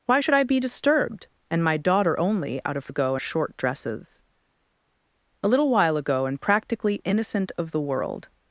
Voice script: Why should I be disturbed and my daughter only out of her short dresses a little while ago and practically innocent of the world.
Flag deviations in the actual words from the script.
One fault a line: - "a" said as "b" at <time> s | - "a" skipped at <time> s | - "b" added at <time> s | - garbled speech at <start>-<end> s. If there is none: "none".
- "her" said as "ago" at 2.9 s